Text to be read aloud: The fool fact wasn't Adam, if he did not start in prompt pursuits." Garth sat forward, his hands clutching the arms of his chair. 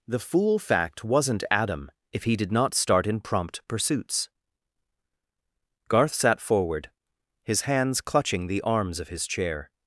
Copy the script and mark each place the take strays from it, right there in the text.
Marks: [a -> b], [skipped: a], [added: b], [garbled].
The fool fact wasn't Adam, if he did not start in prompt pursuits." Garth sat forward, his hands clutching the arms of his chair.